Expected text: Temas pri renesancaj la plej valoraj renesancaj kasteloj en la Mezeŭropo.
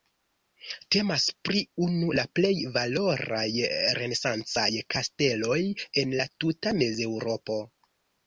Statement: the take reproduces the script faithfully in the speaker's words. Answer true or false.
false